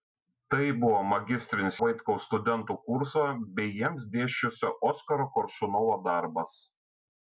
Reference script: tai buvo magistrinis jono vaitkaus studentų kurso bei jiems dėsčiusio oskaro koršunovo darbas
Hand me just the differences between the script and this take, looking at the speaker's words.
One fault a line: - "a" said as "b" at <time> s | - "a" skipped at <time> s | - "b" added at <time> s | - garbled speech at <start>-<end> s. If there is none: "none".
- "jono" skipped at 1.8 s